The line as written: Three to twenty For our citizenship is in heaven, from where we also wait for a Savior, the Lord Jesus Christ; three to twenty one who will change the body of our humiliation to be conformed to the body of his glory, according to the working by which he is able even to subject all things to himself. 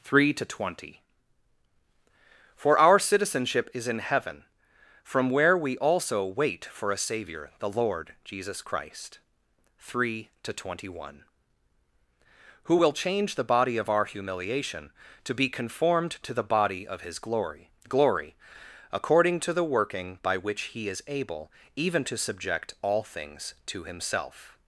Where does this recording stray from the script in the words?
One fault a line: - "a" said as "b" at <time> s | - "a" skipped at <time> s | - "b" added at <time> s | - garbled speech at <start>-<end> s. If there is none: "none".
- "glory" added at 17.9 s